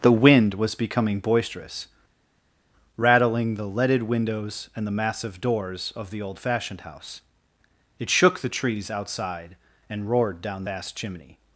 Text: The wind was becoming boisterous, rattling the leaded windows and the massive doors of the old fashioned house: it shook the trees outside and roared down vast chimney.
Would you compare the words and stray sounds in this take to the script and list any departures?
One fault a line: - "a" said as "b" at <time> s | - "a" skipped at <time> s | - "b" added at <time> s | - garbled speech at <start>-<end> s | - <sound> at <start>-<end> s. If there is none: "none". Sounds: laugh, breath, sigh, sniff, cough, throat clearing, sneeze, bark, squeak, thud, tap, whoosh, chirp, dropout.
none